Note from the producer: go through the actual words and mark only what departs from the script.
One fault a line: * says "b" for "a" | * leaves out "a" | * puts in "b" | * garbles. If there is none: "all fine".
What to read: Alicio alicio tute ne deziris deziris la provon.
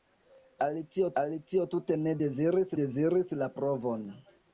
all fine